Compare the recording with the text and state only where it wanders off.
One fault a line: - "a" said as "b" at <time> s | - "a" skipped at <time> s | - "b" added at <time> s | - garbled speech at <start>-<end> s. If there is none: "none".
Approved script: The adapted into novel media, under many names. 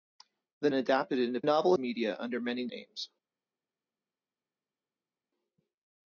none